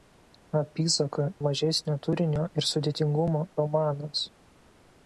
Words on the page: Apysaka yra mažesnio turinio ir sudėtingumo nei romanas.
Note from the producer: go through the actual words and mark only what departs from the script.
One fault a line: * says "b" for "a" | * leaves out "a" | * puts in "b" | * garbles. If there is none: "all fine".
* leaves out "yra"
* leaves out "nei"